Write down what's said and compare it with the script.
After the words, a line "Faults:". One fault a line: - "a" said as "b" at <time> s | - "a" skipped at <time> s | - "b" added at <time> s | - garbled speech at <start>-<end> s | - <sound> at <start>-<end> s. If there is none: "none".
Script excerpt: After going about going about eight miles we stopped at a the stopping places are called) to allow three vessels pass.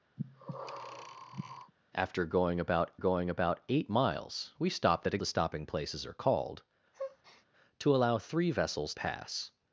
After going about going about eight miles we stopped at a the stopping places are called) to allow three vessels pass.
Faults:
- breath at 0.2-1.7 s
- breath at 6.9-7.5 s